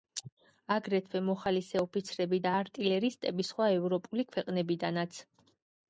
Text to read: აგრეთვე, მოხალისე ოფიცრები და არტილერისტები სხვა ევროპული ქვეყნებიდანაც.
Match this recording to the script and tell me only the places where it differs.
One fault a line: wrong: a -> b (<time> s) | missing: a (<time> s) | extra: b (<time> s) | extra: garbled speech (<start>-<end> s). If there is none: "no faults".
no faults